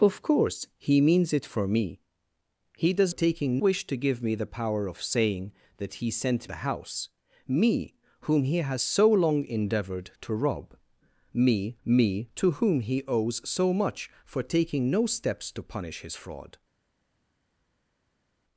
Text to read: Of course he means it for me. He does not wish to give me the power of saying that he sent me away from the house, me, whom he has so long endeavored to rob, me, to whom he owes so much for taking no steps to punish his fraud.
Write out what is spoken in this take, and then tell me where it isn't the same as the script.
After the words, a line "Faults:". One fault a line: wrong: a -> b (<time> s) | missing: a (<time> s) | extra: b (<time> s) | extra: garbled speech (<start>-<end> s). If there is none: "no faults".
Of course he means it for me. He does taking wish to give me the power of saying that he sent the house, me, whom he has so long endeavored to rob, me me, to whom he owes so much for taking no steps to punish his fraud.
Faults:
wrong: not -> taking (3.1 s)
missing: me away from (6.5 s)
extra: me (11.8 s)